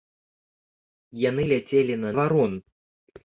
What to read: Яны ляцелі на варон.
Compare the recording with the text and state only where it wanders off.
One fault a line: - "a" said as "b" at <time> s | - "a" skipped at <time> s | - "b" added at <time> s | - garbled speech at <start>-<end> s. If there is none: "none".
none